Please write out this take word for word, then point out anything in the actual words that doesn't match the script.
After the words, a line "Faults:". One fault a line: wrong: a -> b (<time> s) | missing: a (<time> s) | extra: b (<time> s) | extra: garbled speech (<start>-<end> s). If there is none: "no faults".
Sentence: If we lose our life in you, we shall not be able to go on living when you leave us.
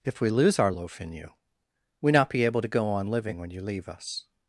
If we lose our loaf in you, we not be able to go on living when you leave us.
Faults:
wrong: life -> loaf (0.7 s)
missing: shall (2.1 s)